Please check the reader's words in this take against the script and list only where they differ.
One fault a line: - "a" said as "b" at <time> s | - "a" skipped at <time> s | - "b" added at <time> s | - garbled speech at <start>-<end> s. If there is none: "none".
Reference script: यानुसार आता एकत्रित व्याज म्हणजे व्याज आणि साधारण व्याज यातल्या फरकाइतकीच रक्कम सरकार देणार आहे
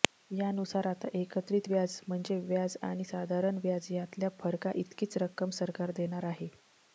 none